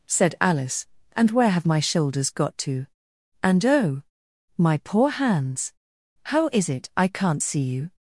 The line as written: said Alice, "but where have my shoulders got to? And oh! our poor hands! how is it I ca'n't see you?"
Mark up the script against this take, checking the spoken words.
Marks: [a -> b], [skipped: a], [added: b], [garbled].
said Alice, ["but -> and] where have my shoulders got to? And oh! [our -> my] poor hands! how is it I ca'n't see you?"